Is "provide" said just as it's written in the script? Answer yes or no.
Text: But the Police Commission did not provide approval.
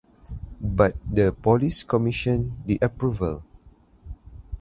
no